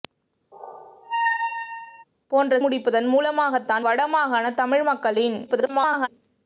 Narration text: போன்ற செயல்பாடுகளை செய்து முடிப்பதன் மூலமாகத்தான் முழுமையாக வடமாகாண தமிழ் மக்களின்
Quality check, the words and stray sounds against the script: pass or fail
fail